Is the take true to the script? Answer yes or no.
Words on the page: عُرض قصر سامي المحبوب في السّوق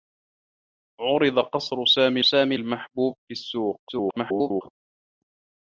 no